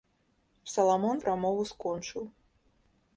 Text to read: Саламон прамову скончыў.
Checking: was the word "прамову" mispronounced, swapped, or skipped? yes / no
no